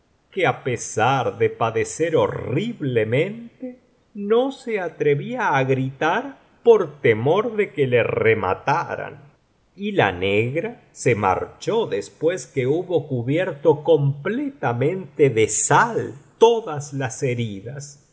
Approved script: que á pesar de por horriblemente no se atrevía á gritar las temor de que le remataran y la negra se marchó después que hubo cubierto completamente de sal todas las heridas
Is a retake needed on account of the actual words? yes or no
yes